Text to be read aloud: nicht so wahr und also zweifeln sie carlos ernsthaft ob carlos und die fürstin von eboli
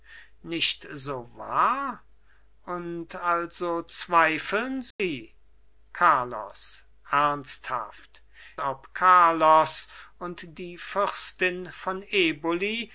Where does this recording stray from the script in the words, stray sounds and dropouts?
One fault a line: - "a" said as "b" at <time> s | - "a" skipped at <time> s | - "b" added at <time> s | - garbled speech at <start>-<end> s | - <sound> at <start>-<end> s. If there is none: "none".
- dropout at 4.9-5.0 s